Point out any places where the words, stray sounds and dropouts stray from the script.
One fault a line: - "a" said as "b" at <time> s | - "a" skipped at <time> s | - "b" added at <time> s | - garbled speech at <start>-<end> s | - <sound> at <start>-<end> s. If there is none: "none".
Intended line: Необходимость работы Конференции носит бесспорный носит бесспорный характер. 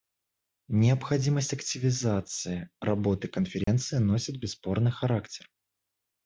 - "активизации" added at 1.5 s
- dropout at 3.6-3.7 s
- "носит бесспорный" skipped at 4.9 s